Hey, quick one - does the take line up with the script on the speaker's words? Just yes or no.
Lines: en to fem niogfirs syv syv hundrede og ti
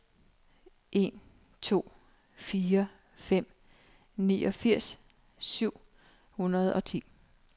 no